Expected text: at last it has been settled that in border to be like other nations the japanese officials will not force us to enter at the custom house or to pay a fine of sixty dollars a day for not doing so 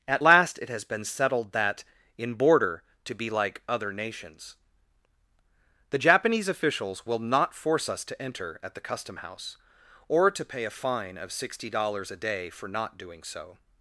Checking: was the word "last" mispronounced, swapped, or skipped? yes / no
no